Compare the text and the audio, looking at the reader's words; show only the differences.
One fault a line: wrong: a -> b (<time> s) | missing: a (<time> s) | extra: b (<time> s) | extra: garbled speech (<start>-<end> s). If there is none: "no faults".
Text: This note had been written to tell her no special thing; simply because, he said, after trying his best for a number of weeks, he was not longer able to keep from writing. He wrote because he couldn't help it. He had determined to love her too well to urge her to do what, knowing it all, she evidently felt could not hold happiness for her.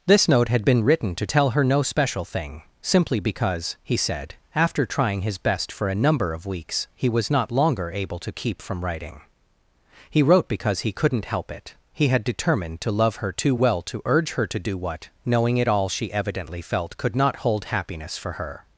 no faults